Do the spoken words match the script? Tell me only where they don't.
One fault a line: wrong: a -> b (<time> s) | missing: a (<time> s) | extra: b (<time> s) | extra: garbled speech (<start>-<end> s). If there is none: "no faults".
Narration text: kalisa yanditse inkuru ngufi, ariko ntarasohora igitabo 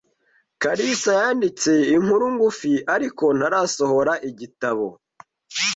no faults